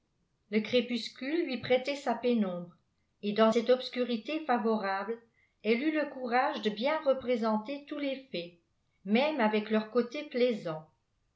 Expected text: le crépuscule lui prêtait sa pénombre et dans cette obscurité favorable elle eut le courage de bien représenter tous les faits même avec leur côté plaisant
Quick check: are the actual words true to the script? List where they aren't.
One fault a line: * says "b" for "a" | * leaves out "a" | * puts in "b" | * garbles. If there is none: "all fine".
all fine